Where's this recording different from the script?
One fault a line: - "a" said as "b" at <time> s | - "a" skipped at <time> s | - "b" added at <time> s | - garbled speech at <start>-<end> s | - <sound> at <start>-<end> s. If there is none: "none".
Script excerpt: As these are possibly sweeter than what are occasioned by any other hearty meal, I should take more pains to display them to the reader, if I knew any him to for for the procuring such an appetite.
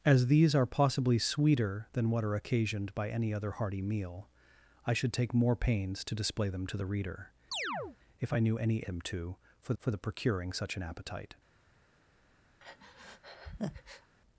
- chirp at 7.5-8.0 s
- breath at 12.6-14.1 s